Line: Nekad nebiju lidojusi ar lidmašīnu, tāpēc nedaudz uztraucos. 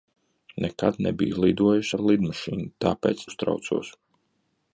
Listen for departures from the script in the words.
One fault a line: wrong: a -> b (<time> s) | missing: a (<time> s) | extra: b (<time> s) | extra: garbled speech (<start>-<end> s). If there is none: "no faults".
missing: nedaudz (3.3 s)